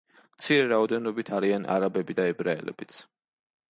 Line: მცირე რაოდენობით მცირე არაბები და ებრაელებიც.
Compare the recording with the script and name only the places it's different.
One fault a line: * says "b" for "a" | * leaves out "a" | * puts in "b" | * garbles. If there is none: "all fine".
* says "არიან" for "მცირე"